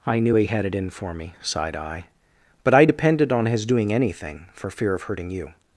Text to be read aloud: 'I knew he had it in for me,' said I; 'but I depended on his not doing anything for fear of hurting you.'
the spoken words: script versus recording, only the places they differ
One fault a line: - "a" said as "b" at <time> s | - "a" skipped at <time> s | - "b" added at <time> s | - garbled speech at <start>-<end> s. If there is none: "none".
- "said" said as "sighed" at 1.4 s
- "not" skipped at 3.7 s